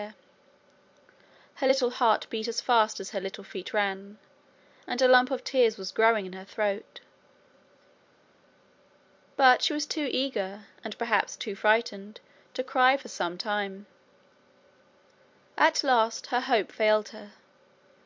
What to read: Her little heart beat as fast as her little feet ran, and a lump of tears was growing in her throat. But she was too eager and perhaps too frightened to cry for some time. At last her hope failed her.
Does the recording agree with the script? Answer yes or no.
yes